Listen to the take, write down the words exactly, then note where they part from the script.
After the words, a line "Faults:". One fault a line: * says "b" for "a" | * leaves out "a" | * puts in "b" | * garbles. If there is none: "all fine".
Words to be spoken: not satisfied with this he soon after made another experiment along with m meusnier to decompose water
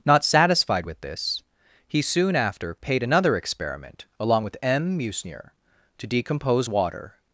not satisfied with this he soon after paid another experiment along with m meusnier to decompose water
Faults:
* says "paid" for "made"